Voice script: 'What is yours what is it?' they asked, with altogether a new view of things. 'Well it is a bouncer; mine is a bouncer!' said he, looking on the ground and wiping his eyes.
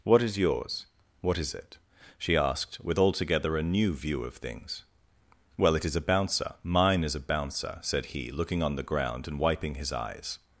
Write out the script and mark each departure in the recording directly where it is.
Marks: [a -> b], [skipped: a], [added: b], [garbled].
'What is yours what is it?' [they -> she] asked, with altogether a new view of things. 'Well it is a bouncer; mine is a bouncer!' said he, looking on the ground and wiping his eyes.